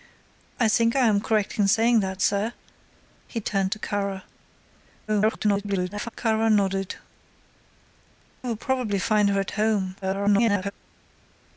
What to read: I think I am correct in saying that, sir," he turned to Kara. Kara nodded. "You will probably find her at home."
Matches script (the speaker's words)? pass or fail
fail